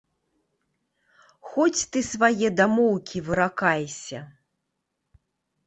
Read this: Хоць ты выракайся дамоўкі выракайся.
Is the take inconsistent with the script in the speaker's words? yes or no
yes